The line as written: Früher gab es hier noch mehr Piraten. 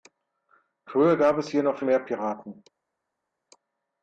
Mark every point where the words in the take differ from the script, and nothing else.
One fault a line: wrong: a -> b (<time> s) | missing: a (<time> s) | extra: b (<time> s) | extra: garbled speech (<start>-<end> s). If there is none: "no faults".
no faults